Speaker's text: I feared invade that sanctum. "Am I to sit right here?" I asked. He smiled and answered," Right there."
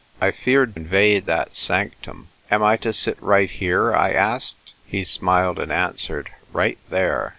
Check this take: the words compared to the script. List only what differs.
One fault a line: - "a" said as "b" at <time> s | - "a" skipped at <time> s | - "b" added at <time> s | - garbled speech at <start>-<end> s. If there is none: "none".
none